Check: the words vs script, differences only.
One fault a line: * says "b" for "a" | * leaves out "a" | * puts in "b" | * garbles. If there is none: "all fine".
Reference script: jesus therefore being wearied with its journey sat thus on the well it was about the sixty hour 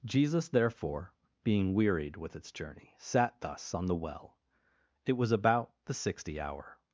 all fine